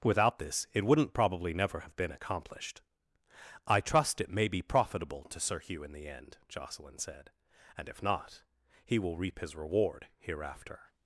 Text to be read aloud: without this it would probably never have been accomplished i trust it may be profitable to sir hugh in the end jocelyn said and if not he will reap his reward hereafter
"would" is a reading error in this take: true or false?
true